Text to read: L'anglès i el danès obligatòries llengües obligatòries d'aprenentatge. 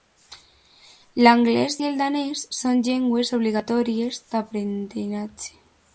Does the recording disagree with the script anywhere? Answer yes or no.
yes